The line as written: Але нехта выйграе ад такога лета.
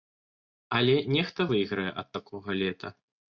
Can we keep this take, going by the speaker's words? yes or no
yes